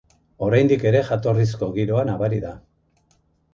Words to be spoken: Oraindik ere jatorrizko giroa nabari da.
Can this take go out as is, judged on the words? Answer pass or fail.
pass